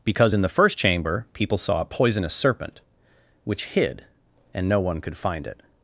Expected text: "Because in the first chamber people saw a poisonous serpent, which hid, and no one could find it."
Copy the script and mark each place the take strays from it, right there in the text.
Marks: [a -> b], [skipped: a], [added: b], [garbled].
"Because in the first chamber people saw a poisonous serpent, which hid, and no one could find it."